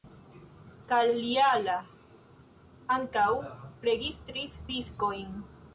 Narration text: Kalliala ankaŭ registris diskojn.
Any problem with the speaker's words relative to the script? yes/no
no